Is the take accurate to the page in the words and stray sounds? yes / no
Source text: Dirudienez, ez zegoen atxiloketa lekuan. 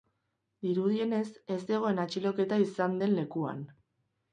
no